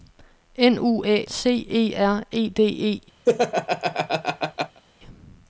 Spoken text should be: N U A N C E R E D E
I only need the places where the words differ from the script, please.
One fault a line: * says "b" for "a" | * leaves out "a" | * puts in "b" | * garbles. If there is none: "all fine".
* leaves out "N"